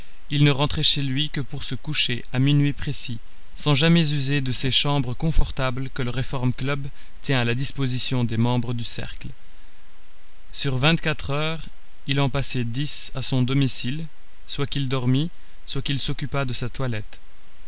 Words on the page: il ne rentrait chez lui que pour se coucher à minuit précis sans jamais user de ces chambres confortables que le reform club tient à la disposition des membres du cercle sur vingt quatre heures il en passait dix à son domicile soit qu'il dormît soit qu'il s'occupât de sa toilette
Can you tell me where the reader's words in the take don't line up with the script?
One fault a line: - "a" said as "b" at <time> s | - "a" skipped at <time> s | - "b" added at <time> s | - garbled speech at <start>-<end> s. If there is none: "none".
none